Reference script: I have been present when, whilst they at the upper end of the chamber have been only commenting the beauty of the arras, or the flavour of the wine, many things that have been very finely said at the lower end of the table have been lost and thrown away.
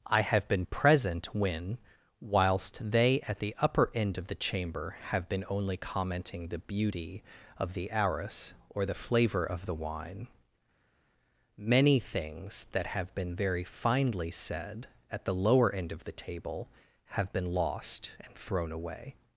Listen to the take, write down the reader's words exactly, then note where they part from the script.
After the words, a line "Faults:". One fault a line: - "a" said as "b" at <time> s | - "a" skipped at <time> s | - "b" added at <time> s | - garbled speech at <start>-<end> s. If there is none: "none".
I have been present when, whilst they at the upper end of the chamber have been only commenting the beauty of the arras, or the flavour of the wine, many things that have been very finely said at the lower end of the table have been lost and thrown away.
Faults:
none